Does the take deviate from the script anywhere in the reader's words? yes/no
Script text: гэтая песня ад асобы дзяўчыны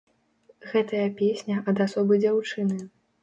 no